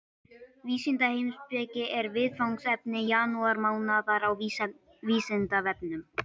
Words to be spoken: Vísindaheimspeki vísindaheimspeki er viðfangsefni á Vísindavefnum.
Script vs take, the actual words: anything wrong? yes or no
yes